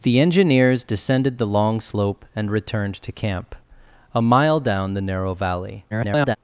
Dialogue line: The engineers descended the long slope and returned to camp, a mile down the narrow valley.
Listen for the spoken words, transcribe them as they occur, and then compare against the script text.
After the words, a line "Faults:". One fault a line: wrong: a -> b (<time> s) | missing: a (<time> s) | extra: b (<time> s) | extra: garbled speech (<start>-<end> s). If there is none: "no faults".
The engineers descended the long slope and returned to camp, a mile down the narrow valley. [garbled]
Faults:
extra: garbled speech (5.9-6.4 s)